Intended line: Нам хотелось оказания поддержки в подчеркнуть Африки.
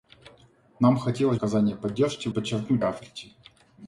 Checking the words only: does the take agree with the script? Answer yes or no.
yes